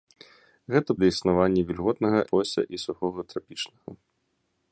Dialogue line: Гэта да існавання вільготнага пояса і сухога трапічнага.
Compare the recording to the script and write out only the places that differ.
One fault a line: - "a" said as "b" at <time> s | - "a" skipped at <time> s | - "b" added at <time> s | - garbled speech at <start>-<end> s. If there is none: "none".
none